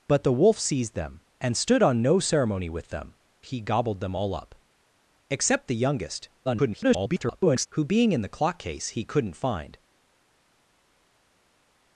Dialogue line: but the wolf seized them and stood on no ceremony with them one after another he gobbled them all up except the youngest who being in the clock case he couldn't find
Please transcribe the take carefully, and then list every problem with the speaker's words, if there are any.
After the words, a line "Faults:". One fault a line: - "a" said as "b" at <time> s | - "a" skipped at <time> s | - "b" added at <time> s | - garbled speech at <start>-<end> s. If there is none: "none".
but the wolf seized them and stood on no ceremony with them he gobbled them all up except the youngest [garbled] who being in the clock case he couldn't find
Faults:
- "one after another" skipped at 3.1 s
- garbled speech at 6.4-7.7 s